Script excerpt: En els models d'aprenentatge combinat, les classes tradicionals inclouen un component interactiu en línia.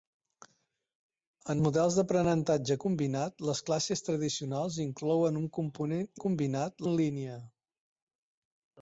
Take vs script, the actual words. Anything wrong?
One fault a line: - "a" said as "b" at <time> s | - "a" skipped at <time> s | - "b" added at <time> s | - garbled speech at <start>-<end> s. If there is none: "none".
- "els" skipped at 1.6 s
- "interactiu" said as "combinat" at 6.3 s